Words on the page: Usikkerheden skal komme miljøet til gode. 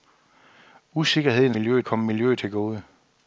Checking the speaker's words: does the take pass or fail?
fail